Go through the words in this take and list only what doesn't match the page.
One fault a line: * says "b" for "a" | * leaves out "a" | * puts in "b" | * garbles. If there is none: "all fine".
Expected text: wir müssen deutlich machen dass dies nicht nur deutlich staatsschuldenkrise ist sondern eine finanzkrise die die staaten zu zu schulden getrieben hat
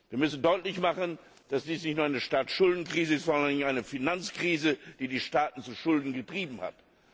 * says "eine" for "deutlich"
* leaves out "zu"